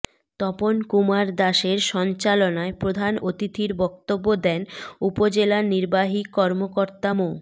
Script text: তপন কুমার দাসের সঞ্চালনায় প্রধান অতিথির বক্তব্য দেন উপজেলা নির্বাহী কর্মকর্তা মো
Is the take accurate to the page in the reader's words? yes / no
yes